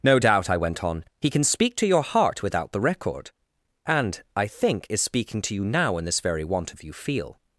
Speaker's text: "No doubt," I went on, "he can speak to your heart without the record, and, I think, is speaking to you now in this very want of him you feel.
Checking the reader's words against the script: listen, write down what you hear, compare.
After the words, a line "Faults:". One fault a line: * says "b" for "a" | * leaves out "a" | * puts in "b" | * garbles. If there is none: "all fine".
"No doubt," I went on, "he can speak to your heart without the record, and, I think, is speaking to you now in this very want of you feel.
Faults:
* leaves out "him"